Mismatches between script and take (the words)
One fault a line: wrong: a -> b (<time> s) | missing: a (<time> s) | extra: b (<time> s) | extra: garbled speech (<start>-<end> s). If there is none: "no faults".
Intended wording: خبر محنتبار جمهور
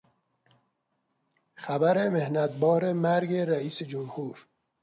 extra: مرگ رئیس (2.9 s)